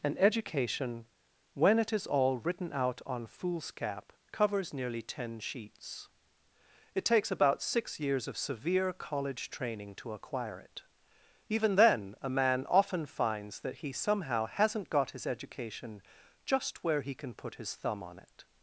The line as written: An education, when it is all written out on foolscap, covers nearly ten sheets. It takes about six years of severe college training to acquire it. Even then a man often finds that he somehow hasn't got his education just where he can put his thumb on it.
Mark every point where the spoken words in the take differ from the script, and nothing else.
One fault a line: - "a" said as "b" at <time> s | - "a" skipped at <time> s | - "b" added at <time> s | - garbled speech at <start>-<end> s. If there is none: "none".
none